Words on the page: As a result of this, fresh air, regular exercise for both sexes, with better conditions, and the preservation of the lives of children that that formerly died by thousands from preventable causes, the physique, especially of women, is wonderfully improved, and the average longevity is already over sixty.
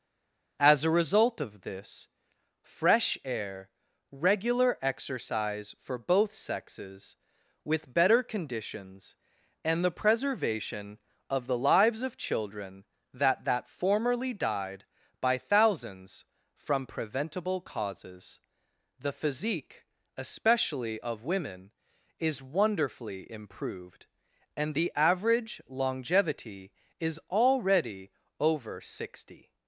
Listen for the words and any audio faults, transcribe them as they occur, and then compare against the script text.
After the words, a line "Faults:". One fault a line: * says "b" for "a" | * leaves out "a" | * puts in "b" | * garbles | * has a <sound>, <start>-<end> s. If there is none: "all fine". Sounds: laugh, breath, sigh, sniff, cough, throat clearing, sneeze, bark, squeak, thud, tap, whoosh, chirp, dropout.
As a result of this, fresh air, regular exercise for both sexes, with better conditions, and the preservation of the lives of children that that formerly died by thousands from preventable causes, the physique, especially of women, is wonderfully improved, and the average longevity is already over sixty.
Faults:
all fine